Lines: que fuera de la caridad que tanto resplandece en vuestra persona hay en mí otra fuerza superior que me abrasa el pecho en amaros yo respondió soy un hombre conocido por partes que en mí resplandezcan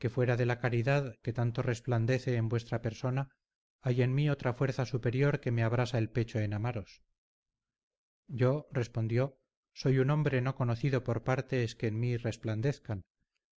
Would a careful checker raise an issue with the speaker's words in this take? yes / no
yes